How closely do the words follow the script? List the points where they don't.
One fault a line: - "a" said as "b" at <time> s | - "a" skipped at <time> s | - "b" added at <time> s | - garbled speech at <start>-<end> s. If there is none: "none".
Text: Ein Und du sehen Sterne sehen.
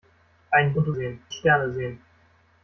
none